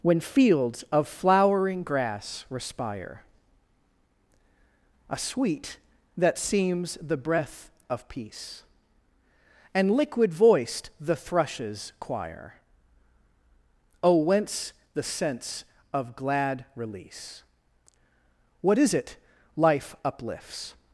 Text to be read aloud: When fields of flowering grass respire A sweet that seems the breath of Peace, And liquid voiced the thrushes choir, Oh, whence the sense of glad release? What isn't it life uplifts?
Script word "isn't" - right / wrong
wrong